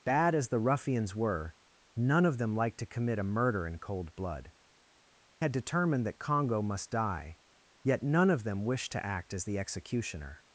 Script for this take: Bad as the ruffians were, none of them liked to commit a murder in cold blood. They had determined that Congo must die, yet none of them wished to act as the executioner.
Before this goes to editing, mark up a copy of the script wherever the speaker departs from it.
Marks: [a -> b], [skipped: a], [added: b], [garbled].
Bad as the ruffians were, none of them liked to commit a murder in cold blood. [skipped: They] had determined that Congo must die, yet none of them wished to act as the executioner.